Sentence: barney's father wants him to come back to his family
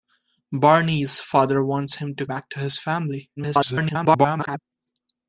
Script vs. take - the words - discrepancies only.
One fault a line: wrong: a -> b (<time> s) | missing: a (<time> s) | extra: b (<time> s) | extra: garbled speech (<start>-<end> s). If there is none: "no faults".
missing: come (2.2 s)
extra: garbled speech (3.4-4.6 s)